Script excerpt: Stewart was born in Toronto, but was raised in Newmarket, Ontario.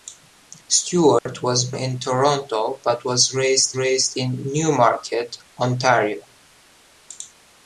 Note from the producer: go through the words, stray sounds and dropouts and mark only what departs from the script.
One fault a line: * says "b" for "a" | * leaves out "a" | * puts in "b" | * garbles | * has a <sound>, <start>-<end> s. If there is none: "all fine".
* has a dropout, 1.2-1.3 s
* leaves out "born"
* puts in "raised"